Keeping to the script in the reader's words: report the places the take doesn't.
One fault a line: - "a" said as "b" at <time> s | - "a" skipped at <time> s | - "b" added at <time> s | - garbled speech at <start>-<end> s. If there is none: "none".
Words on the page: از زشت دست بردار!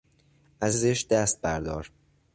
none